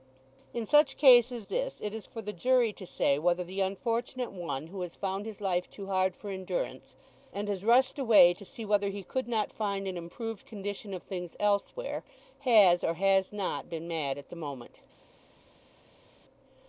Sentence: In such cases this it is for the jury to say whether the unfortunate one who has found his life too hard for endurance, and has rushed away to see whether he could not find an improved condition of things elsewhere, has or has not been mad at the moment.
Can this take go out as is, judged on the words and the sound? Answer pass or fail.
pass